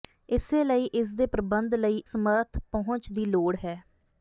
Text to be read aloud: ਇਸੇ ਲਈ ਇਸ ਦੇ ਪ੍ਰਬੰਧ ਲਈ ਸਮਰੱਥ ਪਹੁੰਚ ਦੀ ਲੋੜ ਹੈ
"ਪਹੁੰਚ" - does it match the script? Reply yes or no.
yes